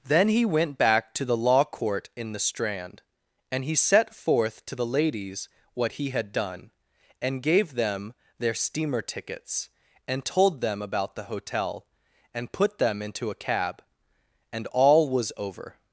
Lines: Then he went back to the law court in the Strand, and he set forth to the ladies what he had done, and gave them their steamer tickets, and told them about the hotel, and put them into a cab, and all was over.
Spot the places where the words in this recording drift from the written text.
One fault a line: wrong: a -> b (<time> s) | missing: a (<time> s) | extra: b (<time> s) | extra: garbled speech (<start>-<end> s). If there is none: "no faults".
no faults